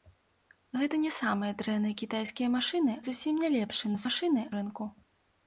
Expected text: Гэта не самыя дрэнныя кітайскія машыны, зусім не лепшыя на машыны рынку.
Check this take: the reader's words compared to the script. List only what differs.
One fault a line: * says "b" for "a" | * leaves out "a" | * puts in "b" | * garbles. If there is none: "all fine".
all fine